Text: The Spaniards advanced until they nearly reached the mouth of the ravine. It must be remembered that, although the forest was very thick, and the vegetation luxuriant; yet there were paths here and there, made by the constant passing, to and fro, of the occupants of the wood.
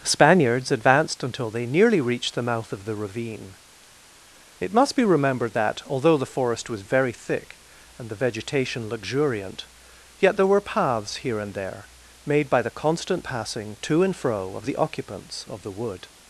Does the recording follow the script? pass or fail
fail